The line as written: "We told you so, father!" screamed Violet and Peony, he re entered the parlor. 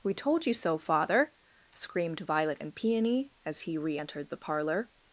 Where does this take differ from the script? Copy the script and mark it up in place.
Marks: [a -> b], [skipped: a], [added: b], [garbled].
"We told you so, father!" screamed Violet and Peony, [added: as] he re entered the parlor.